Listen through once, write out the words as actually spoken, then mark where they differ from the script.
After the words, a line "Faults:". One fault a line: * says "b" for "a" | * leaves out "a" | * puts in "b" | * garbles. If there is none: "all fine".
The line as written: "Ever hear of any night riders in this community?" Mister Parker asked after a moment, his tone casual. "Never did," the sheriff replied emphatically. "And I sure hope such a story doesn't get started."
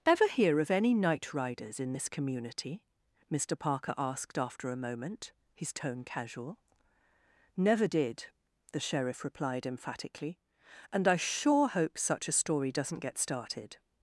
"Ever hear of any night riders in this community?" Mister Parker asked after a moment, his tone casual. "Never did," the sheriff replied emphatically. "And I sure hope such a story doesn't get started."
Faults:
all fine